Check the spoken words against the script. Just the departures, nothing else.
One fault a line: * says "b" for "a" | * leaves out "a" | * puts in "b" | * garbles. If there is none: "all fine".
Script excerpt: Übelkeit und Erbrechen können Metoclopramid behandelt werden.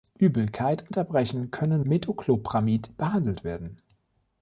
all fine